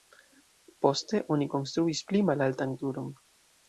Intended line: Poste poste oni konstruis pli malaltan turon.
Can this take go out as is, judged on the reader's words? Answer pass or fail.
fail